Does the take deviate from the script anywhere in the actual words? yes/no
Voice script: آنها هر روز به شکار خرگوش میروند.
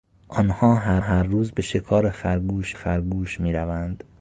yes